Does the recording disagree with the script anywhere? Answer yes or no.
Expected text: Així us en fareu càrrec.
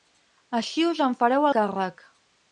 no